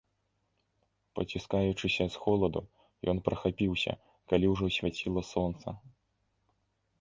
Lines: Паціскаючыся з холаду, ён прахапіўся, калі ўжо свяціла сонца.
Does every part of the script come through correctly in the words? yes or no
yes